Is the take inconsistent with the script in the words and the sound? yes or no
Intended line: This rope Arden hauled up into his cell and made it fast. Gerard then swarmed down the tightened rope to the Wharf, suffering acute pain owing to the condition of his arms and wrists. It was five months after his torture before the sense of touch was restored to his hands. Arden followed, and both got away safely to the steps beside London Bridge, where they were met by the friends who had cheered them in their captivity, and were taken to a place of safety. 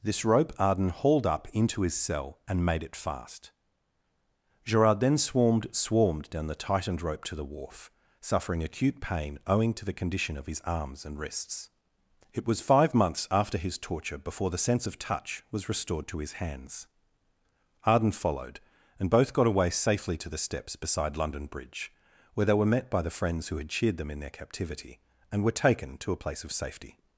yes